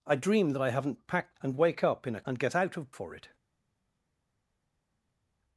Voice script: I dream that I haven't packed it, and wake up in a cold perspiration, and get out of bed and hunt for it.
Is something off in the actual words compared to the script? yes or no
yes